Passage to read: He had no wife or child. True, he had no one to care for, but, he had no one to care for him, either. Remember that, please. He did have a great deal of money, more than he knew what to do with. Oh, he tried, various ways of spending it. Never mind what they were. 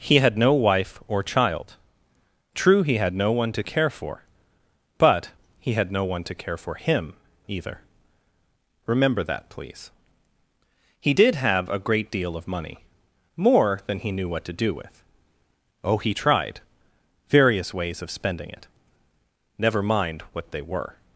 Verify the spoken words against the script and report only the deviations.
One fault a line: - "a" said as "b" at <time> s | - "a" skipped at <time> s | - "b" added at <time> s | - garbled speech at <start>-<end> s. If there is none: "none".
none